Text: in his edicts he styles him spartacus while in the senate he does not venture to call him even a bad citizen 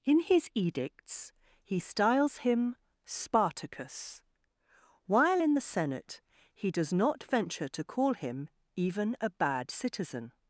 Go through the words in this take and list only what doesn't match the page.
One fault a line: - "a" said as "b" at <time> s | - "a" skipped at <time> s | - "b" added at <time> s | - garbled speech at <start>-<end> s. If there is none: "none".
none